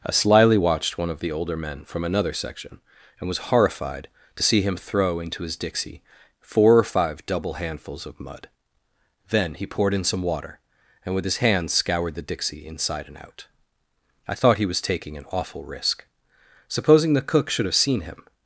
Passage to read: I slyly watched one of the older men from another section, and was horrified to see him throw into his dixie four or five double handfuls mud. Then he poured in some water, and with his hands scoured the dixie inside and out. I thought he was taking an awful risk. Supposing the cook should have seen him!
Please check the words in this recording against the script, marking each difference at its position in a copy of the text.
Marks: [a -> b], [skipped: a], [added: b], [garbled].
I slyly watched one of the older men from another section, and was horrified to see him throw into his dixie four or five double handfuls [added: of] mud. Then he poured in some water, and with his hands scoured the dixie inside and out. I thought he was taking an awful risk. Supposing the cook should have seen him!